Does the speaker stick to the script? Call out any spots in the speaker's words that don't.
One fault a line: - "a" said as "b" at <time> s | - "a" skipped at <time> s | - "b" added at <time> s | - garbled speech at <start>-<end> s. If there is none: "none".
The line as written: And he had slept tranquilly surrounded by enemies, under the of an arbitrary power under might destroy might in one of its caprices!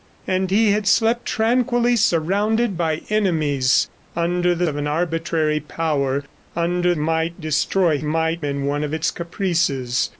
none